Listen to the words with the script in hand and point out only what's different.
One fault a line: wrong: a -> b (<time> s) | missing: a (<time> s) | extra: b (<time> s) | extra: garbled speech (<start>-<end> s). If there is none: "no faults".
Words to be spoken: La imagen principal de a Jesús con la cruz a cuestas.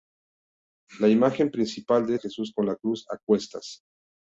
no faults